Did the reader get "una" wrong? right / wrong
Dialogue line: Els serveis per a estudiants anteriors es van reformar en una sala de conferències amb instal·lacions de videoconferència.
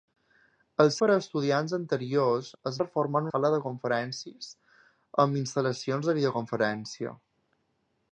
wrong